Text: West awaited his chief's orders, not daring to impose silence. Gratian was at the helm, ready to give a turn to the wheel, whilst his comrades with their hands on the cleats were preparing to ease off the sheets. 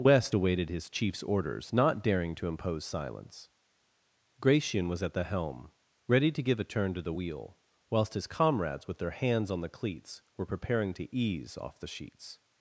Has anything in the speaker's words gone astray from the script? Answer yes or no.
no